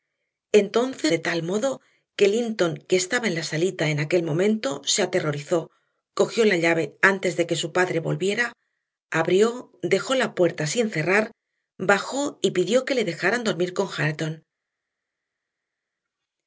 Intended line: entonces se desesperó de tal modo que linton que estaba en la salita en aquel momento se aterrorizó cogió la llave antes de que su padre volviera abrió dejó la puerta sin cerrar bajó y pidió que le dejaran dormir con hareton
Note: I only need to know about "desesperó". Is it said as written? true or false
false